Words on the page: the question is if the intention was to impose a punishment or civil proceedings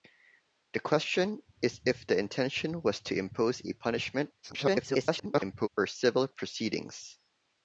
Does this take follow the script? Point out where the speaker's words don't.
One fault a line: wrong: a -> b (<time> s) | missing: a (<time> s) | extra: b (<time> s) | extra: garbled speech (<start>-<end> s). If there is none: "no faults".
extra: garbled speech (4.4-5.7 s)